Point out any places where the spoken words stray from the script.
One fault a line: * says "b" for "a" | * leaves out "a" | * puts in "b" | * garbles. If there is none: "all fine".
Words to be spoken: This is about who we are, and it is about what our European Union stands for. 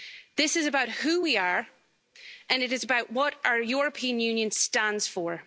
all fine